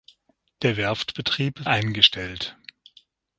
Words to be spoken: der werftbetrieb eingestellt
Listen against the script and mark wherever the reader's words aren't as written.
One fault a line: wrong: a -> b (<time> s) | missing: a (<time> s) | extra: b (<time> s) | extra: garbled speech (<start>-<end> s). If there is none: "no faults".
no faults